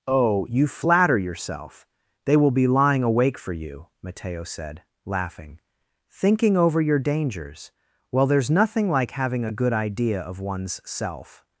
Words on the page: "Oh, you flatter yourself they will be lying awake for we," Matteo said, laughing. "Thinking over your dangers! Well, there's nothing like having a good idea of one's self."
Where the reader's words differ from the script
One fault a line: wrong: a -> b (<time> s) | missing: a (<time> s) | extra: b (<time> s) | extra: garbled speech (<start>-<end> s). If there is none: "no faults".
wrong: we -> you (3.5 s)